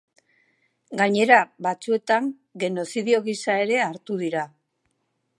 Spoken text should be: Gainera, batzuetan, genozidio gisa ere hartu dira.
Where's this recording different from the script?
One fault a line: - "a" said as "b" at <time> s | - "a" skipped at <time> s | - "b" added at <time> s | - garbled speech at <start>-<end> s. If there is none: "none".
none